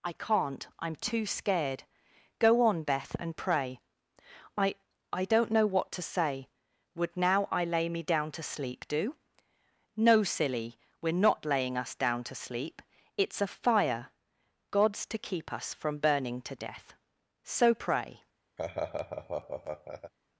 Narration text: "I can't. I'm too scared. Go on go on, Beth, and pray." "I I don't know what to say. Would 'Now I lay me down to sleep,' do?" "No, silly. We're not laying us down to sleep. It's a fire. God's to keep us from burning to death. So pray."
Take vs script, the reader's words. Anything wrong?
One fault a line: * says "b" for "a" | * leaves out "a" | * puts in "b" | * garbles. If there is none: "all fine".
* leaves out "go on"